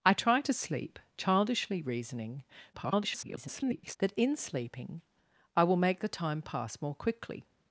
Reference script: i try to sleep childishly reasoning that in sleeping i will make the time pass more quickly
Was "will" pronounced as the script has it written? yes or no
yes